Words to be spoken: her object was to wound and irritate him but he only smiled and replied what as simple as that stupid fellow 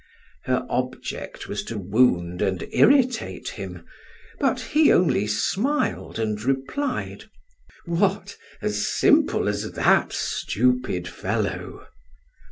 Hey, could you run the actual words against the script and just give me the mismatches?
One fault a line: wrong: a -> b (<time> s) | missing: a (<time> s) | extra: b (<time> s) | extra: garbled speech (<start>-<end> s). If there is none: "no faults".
no faults